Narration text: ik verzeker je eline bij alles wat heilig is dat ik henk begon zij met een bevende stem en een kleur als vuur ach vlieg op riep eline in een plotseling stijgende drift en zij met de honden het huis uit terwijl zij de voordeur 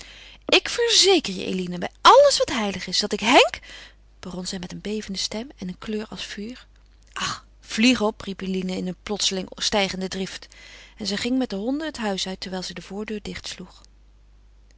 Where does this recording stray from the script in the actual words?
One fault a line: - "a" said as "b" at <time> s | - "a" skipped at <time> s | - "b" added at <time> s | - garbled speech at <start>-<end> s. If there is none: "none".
- "ging" added at 11.2 s